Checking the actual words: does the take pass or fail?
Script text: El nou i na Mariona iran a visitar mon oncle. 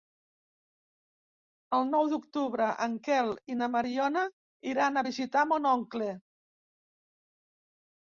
fail